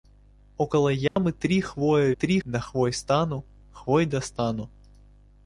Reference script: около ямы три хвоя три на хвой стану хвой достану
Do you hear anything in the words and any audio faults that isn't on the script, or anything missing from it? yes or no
yes